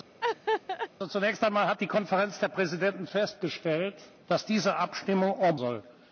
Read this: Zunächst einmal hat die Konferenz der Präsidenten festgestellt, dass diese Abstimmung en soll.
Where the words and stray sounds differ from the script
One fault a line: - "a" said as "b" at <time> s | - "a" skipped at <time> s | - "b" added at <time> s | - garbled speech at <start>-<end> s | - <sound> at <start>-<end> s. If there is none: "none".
- laugh at 0.2-0.9 s